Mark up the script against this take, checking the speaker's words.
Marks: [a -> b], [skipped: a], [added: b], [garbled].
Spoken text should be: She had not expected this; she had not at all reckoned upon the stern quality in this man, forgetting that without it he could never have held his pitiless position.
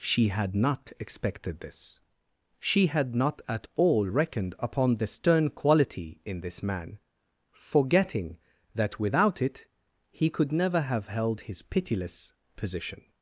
She had not expected this; she had not at all reckoned upon the stern quality in this man, forgetting that without it he could never have held his pitiless position.